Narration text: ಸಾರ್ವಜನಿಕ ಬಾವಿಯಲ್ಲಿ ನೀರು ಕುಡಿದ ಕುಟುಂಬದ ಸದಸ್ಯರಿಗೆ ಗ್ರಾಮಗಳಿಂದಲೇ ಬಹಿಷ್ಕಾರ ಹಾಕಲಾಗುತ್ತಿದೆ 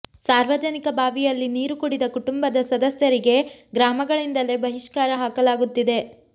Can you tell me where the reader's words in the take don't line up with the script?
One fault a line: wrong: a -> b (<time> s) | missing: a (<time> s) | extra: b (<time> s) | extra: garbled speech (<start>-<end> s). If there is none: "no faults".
no faults